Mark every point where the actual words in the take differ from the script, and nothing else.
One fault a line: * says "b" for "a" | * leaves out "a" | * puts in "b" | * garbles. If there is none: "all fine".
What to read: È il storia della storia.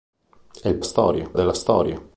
all fine